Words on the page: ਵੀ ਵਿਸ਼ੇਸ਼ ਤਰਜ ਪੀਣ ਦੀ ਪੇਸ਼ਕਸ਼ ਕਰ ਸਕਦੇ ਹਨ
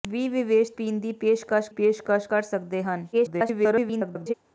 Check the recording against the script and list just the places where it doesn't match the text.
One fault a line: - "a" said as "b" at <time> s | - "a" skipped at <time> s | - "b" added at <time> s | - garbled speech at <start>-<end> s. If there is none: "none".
- "ਤਰਜ" skipped at 0.7 s
- "ਪੇਸ਼ਕਸ਼" added at 1.7 s
- garbled speech at 3.1-4.3 s